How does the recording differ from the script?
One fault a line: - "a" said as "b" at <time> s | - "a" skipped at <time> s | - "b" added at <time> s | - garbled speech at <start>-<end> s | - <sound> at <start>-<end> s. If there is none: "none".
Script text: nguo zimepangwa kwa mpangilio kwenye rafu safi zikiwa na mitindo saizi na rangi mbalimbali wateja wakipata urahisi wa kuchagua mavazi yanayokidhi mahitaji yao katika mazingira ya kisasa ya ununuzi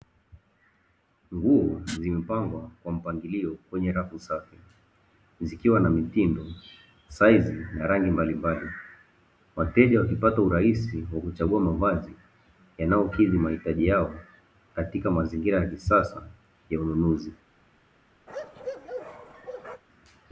- bark at 18.3-19.8 s